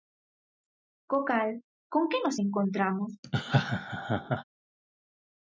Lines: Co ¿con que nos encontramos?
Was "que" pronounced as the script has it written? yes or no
yes